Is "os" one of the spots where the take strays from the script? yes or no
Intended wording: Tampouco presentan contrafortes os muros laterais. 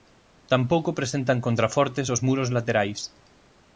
no